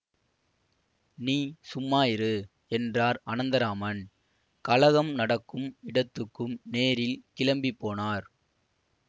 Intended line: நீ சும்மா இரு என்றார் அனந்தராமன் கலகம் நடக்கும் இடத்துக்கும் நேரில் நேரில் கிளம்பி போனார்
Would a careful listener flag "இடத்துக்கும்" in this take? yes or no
no